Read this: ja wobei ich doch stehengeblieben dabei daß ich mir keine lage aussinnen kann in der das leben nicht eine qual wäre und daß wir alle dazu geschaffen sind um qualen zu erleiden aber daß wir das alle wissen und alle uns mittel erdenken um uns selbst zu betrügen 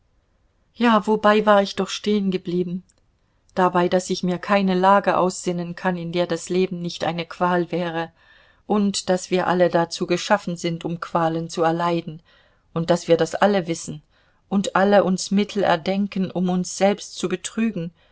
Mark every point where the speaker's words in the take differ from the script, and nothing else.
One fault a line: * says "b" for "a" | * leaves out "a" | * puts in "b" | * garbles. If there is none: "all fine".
* puts in "war"
* says "und" for "aber"